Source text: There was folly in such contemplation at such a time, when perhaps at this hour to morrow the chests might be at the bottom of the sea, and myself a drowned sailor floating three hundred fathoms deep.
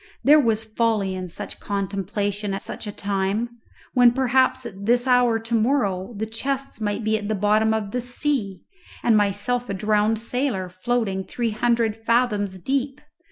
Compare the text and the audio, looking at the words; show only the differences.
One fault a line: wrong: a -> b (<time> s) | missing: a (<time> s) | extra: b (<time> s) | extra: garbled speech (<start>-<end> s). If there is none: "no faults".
missing: at (2.5 s)